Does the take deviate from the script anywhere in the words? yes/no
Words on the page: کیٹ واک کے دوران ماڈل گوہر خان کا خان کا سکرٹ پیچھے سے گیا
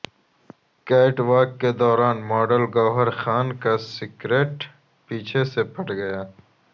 yes